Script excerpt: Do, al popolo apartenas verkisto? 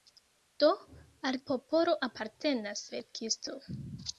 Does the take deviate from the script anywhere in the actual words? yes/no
no